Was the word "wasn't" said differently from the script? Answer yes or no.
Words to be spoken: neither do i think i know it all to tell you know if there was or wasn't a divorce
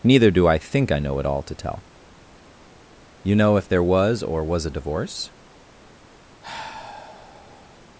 yes